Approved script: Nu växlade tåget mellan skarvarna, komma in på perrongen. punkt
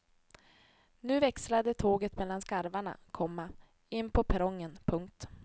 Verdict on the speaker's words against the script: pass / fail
pass